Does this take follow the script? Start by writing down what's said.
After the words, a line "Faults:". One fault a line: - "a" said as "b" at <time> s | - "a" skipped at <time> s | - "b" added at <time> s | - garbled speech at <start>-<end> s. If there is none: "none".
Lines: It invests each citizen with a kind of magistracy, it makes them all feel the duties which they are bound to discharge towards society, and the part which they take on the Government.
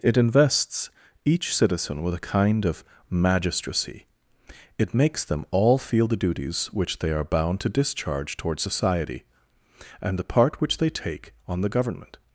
It invests each citizen with a kind of magistracy, it makes them all feel the duties which they are bound to discharge towards society, and the part which they take on the Government.
Faults:
none